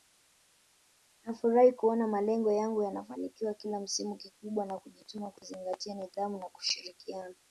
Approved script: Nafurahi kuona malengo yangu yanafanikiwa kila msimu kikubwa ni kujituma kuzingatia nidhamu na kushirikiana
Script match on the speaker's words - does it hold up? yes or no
yes